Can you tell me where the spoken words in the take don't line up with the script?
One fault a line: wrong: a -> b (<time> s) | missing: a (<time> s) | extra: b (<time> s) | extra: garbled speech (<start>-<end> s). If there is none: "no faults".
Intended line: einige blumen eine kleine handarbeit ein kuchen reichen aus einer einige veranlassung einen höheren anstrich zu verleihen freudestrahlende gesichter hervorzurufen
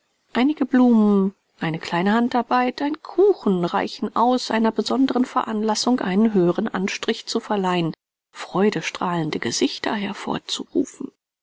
wrong: einige -> besonderen (4.7 s)